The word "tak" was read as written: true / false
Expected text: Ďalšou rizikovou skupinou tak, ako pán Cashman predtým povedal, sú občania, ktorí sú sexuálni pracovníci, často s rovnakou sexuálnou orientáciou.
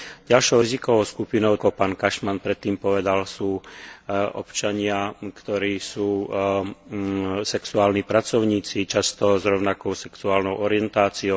false